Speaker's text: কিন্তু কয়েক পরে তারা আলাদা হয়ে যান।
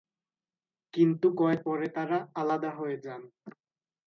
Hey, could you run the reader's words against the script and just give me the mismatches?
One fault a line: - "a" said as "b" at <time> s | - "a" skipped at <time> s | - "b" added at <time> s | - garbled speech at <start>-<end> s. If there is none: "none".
none